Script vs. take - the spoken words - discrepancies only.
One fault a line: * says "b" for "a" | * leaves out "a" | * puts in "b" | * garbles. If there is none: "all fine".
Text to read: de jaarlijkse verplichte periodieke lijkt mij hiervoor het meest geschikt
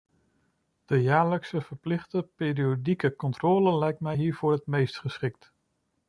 * puts in "controle"